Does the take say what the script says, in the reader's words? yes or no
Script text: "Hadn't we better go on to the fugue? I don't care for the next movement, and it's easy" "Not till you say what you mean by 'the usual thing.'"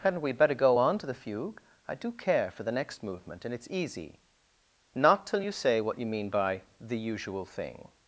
no